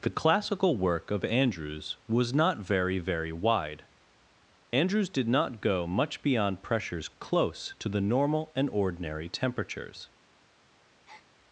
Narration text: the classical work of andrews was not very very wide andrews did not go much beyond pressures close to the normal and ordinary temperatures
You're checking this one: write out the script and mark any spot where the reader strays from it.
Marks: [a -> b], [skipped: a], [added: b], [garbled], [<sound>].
the classical work of andrews was not very very wide andrews did not go much beyond pressures close to the normal and ordinary temperatures [breath]